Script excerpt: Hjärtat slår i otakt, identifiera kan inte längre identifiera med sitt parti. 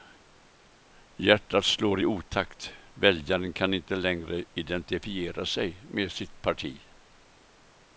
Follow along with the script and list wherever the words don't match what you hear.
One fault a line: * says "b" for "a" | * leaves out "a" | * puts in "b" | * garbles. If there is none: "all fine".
* says "väljaren" for "identifiera"
* puts in "sig"